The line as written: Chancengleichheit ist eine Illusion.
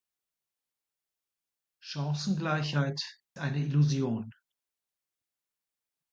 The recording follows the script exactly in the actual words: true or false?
false